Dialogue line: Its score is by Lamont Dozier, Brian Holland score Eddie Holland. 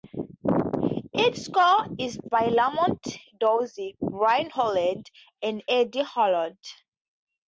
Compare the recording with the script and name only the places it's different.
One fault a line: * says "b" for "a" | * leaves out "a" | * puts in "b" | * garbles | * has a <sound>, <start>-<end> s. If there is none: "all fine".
* says "and" for "score"